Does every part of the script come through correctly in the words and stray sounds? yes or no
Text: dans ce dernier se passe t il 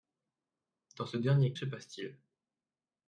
yes